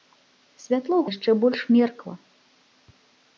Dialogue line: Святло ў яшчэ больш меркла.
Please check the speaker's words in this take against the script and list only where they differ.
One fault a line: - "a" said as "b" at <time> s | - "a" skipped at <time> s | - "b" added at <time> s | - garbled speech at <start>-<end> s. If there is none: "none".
none